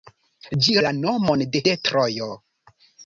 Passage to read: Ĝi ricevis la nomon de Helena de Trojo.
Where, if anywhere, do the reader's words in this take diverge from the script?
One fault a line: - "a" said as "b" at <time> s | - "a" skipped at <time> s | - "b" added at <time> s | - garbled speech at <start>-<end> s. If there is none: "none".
- "ricevis" skipped at 0.7 s
- "Helena" skipped at 1.6 s